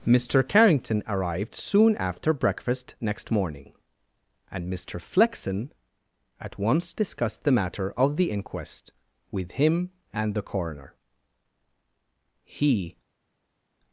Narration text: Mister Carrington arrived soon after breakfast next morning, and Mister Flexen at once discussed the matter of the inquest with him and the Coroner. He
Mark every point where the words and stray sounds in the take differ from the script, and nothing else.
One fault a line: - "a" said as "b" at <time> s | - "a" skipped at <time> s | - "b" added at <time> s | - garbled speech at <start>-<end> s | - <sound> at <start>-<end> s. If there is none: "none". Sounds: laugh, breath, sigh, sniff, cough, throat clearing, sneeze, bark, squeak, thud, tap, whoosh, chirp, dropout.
none